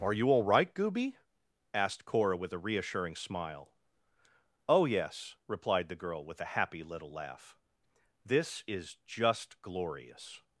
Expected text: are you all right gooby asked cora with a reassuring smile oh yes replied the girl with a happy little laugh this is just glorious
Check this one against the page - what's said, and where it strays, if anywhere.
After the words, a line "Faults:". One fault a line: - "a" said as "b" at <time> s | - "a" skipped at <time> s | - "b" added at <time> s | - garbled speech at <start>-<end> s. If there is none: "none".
are you all right gooby asked cora with a reassuring smile oh yes replied the girl with a happy little laugh this is just glorious
Faults:
none